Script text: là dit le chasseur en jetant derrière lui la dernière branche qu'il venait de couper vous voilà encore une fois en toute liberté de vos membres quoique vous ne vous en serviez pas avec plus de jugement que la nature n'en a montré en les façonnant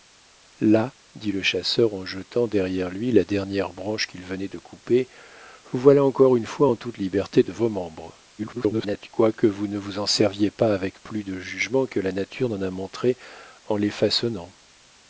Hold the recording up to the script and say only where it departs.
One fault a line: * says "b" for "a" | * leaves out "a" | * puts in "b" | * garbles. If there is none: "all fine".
* garbles